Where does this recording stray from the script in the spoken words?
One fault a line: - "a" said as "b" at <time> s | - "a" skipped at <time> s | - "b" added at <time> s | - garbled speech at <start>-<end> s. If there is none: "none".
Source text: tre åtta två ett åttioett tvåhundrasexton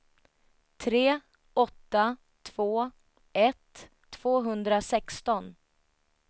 - "åttioett" skipped at 3.9 s